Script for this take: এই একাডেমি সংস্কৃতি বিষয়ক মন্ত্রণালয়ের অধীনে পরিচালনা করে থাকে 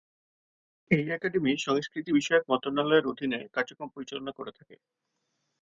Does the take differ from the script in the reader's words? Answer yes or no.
yes